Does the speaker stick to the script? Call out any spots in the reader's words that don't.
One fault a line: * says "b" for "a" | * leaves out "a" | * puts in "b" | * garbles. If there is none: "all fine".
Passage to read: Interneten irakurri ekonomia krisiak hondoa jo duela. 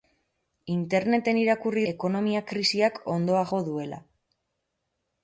all fine